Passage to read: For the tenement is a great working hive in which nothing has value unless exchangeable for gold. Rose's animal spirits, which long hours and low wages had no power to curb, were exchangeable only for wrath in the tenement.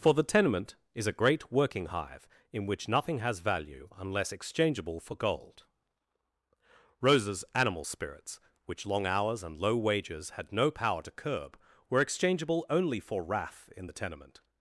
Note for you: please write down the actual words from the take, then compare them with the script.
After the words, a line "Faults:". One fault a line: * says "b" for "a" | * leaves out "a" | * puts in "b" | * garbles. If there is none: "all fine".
For the tenement is a great working hive in which nothing has value unless exchangeable for gold. Rose's animal spirits, which long hours and low wages had no power to curb, were exchangeable only for wrath in the tenement.
Faults:
all fine